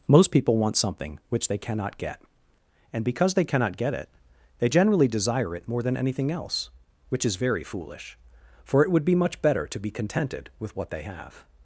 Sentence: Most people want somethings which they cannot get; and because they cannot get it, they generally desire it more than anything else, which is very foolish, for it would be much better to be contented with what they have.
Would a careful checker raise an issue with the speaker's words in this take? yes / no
yes